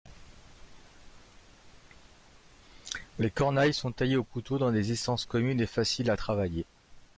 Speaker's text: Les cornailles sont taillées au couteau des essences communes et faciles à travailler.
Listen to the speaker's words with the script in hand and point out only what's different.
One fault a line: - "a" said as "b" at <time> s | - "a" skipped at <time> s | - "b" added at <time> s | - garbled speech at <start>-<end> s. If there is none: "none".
- "dans" added at 4.6 s